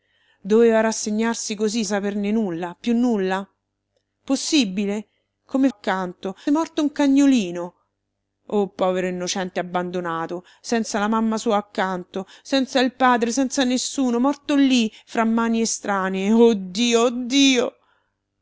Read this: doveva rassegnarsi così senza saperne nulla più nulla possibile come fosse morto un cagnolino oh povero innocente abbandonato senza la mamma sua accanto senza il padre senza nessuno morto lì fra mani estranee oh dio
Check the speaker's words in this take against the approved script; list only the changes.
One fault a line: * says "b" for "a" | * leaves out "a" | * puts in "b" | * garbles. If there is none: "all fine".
* leaves out "senza"
* says "accanto" for "fosse"